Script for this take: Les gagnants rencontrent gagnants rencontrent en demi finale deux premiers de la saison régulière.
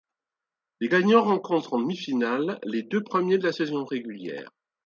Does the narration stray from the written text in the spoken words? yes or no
yes